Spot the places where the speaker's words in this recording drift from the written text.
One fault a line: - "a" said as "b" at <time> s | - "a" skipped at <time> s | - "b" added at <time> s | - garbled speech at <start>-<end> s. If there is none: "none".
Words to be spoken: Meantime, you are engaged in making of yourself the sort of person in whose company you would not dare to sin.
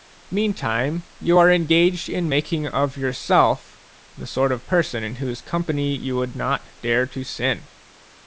none